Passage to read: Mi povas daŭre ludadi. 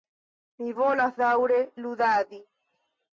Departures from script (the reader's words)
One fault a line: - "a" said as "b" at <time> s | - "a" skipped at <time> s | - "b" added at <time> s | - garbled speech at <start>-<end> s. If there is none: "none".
- "povas" said as "volas" at 0.7 s